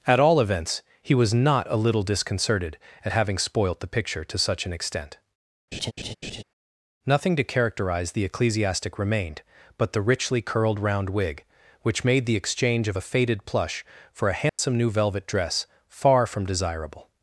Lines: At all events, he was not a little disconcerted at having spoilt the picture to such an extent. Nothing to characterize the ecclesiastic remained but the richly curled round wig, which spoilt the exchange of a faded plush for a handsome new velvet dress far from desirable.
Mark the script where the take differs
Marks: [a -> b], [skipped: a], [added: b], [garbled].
At all events, he was not a little disconcerted at having spoilt the picture to such an extent. Nothing to characterize the ecclesiastic remained but the richly curled round wig, which [spoilt -> made] the exchange of a faded plush for a handsome new velvet dress far from desirable.